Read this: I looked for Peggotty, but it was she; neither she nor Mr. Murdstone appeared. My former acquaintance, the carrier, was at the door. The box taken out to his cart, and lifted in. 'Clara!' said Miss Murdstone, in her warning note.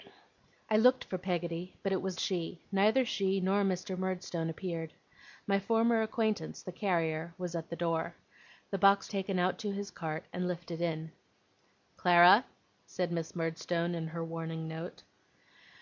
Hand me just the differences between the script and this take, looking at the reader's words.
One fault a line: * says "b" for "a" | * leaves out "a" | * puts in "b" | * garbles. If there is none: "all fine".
all fine